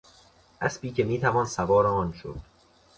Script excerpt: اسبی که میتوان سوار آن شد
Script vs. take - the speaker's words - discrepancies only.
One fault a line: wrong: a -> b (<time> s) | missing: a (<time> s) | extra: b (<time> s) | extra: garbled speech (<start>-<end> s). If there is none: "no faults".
no faults